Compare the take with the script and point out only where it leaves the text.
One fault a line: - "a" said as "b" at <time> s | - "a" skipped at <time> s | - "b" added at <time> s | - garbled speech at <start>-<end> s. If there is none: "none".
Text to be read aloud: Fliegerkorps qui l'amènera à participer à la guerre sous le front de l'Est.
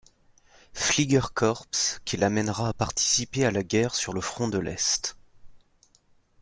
- "sous" said as "sur" at 3.9 s